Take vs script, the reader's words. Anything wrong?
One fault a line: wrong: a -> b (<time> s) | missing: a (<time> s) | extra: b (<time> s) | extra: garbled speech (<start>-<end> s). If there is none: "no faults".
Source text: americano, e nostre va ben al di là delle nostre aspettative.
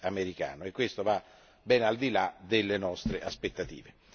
wrong: nostre -> questo (0.7 s)